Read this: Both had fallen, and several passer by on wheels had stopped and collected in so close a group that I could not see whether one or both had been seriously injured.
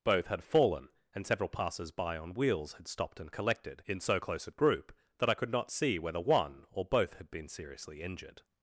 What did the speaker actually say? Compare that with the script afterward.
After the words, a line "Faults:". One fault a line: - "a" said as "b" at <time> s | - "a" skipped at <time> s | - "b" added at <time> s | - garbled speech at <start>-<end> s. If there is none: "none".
Both had fallen, and several passers by on wheels had stopped and collected in so close a group that I could not see whether one or both had been seriously injured.
Faults:
- "passer" said as "passers" at 1.5 s